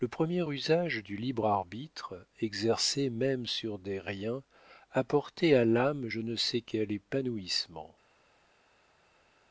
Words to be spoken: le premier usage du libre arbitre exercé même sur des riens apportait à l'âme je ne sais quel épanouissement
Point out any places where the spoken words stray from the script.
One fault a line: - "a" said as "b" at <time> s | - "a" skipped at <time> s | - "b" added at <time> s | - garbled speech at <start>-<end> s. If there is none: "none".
none